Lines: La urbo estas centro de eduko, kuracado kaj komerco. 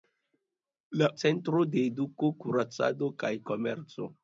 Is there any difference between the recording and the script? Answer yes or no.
yes